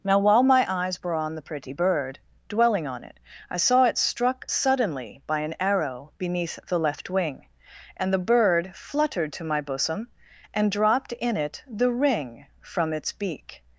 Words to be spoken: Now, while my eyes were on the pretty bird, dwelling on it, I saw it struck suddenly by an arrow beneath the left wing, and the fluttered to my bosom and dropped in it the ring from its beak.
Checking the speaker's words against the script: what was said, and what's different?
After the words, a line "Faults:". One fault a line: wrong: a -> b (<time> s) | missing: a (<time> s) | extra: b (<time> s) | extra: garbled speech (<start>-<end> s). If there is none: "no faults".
Now, while my eyes were on the pretty bird, dwelling on it, I saw it struck suddenly by an arrow beneath the left wing, and the bird fluttered to my bosom and dropped in it the ring from its beak.
Faults:
extra: bird (8.3 s)